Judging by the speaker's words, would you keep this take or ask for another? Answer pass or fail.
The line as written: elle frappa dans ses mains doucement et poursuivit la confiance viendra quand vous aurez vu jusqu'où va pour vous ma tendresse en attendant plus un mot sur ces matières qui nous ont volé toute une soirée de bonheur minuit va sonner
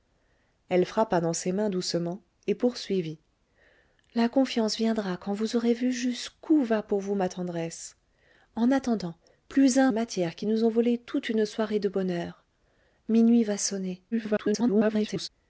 fail